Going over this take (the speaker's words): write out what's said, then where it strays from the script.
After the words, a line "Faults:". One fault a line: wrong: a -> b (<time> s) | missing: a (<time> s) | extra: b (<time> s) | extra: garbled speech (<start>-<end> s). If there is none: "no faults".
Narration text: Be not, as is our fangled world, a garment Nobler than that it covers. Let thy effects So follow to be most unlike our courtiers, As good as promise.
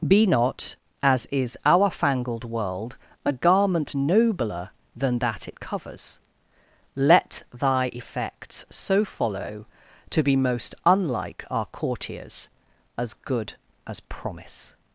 Be not, as is our fangled world, a garment Nobler than that it covers. Let thy effects So follow to be most unlike our courtiers, As good as promise.
Faults:
no faults